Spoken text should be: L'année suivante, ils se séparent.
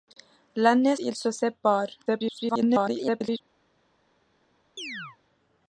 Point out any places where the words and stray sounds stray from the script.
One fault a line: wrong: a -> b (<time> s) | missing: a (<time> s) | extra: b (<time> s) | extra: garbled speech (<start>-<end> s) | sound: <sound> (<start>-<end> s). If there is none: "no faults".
missing: suivante (0.9 s)
extra: garbled speech (2.1-3.4 s)
sound: chirp (4.8-5.2 s)